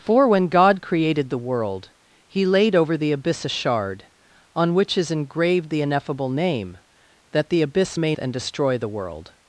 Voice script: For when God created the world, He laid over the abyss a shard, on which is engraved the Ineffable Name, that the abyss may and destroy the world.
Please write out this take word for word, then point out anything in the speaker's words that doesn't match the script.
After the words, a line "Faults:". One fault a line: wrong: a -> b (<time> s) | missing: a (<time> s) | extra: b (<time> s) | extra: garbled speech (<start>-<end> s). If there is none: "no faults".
For when God created the world, He laid over the abyss a shard, on which is engraved the Ineffable Name, that the abyss may and destroy the world.
Faults:
no faults